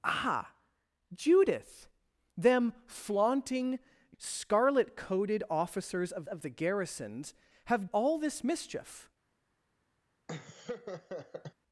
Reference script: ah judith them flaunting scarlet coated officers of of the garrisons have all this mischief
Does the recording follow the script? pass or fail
pass